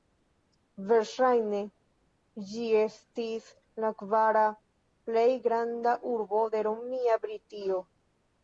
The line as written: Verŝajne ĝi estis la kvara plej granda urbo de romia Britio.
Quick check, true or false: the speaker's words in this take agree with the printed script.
true